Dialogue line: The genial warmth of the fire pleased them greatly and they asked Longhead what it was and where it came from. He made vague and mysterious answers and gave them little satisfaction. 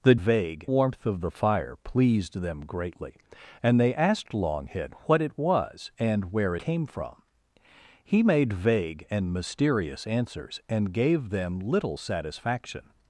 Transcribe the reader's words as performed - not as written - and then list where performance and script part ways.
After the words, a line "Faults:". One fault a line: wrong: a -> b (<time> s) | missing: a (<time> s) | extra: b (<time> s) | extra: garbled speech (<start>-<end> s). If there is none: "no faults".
The vague warmth of the fire pleased them greatly and they asked Longhead what it was and where came from. He made vague and mysterious answers and gave them little satisfaction.
Faults:
wrong: genial -> vague (0.1 s)
missing: it (6.5 s)